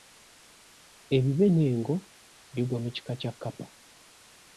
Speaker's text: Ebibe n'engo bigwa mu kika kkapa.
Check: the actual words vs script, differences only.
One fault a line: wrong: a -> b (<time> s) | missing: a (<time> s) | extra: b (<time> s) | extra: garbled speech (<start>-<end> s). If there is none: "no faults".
extra: kya (3.2 s)